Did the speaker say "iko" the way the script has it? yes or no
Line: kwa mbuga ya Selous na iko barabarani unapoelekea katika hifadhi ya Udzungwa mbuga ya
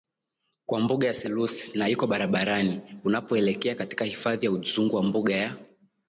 yes